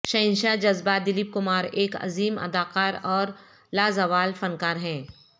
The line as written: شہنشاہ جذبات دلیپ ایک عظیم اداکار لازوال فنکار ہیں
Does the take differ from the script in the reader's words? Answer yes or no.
yes